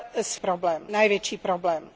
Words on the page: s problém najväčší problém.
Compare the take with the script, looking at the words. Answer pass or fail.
pass